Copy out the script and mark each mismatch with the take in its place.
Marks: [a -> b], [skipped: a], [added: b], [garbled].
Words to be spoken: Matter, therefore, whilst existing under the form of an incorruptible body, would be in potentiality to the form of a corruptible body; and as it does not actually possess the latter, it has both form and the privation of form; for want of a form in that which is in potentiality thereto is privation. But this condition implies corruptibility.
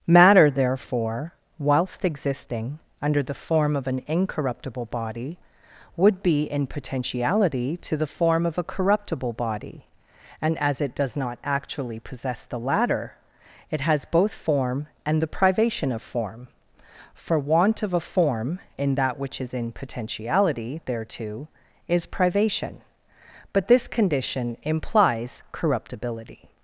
Matter, therefore, whilst existing under the form of an incorruptible body, would be in potentiality to the form of a corruptible body; and as it does not actually possess the latter, it has both form and the privation of form; for want of a form in that which is in potentiality thereto is privation. But this condition implies corruptibility.